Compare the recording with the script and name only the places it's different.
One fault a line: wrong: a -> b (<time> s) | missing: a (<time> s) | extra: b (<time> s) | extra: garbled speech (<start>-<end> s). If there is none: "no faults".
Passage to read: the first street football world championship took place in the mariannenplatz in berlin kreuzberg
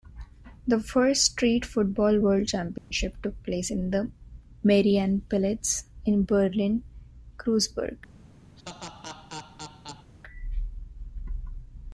no faults